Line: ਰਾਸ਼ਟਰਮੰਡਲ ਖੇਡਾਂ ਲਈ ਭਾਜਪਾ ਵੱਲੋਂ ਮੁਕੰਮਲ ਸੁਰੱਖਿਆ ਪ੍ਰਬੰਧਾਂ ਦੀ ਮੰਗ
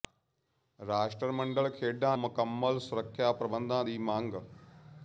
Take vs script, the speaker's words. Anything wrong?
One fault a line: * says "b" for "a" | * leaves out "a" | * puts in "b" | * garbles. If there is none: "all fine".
* leaves out "ਲਈ ਭਾਜਪਾ ਵੱਲੋਂ"